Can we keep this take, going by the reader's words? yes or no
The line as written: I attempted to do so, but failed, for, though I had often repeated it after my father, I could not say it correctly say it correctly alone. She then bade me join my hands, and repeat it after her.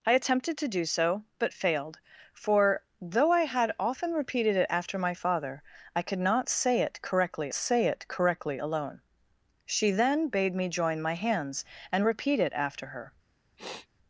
yes